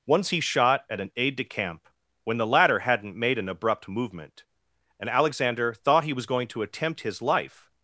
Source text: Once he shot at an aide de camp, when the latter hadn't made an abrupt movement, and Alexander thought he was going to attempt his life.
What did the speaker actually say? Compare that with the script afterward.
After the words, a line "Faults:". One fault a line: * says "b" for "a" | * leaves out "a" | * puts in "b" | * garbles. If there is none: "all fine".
Once he shot at an aide de camp, when the latter hadn't made an abrupt movement, and Alexander thought he was going to attempt his life.
Faults:
all fine